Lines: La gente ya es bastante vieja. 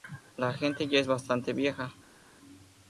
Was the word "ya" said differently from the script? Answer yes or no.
no